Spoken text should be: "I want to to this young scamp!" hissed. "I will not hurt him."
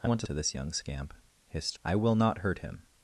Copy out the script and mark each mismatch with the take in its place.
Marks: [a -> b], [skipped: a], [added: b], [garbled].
"I want to to this young scamp!" hissed. "I will not hurt him."